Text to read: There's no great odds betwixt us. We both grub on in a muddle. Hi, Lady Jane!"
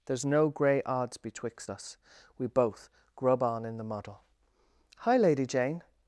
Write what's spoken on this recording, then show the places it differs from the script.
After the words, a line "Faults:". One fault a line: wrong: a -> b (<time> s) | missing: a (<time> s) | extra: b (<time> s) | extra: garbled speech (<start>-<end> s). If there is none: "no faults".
There's no grey odds betwixt us. We both grub on in the muddle. Hi, Lady Jane!"
Faults:
wrong: great -> grey (0.5 s)
wrong: a -> the (3.8 s)